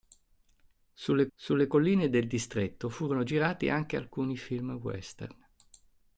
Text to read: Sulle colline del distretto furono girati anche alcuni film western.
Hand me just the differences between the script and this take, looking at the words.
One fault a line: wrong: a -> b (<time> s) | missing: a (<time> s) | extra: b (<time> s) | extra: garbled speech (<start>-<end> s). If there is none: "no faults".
extra: sulle (1.3 s)